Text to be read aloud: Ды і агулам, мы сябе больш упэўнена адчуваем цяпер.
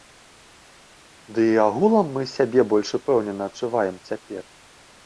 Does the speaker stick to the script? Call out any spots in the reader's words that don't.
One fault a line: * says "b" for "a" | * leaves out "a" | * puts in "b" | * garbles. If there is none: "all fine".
all fine